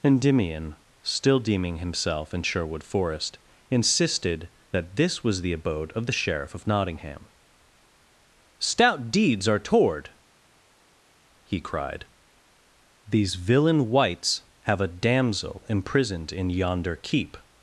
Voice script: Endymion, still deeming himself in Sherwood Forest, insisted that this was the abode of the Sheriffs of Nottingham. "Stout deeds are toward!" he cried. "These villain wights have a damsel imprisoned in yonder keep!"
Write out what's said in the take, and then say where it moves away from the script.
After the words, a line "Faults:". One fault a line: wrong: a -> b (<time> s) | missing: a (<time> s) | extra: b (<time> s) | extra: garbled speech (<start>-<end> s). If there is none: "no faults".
Endymion, still deeming himself in Sherwood Forest, insisted that this was the abode of the Sheriff of Nottingham. "Stout deeds are toward!" he cried. "These villain wights have a damsel imprisoned in yonder keep!"
Faults:
wrong: Sheriffs -> Sheriff (6.1 s)